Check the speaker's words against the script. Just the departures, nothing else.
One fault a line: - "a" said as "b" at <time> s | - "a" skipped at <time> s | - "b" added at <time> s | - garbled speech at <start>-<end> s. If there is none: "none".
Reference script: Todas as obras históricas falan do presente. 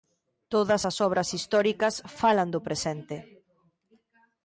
none